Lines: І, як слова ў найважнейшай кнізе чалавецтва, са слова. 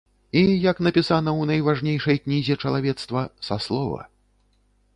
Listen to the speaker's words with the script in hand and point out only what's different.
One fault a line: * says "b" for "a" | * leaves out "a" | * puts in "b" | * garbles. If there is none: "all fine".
* says "напісана" for "слова"